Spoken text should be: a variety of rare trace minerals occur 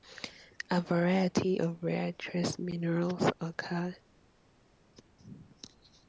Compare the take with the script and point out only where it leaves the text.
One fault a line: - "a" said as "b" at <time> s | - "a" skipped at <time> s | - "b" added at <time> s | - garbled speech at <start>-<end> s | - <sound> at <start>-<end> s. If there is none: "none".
none